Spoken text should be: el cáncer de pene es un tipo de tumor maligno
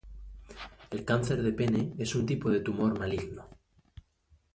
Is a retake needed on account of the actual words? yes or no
no